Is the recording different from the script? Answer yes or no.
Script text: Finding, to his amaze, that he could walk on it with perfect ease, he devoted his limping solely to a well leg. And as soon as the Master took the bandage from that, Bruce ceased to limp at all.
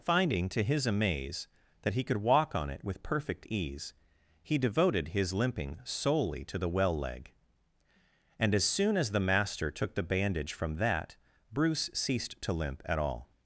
yes